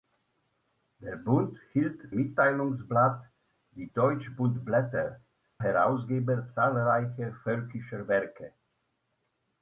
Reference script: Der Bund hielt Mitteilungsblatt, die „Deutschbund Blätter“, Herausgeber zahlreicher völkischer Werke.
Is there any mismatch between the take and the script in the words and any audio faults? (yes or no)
no